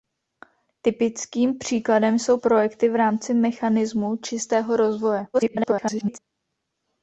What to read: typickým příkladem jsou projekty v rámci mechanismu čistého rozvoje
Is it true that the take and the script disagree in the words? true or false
true